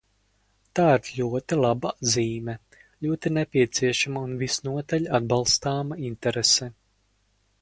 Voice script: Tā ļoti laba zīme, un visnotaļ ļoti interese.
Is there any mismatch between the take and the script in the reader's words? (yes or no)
yes